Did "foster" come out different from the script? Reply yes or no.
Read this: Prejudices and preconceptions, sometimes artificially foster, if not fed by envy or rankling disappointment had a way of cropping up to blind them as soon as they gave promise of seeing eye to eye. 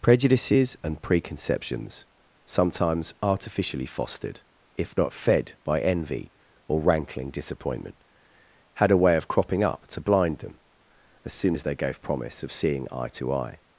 yes